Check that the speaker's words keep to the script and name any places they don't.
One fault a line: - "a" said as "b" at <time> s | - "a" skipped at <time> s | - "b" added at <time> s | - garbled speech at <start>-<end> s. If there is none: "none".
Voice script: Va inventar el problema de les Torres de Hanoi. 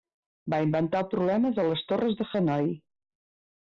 none